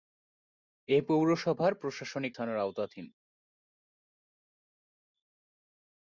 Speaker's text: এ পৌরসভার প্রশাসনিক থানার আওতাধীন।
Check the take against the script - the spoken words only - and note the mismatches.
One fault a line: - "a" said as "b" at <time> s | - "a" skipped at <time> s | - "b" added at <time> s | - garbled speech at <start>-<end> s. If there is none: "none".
none